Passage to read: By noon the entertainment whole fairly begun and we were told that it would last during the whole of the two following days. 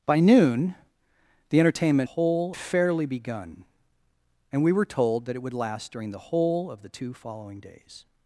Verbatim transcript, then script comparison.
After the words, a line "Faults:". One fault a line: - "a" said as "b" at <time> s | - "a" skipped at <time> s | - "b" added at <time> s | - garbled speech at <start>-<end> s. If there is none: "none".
By noon the entertainment whole fairly begun and we were told that it would last during the whole of the two following days.
Faults:
none